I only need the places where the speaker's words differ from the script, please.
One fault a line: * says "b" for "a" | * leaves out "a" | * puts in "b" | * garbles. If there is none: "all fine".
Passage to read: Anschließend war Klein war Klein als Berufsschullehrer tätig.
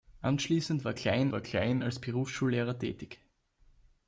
all fine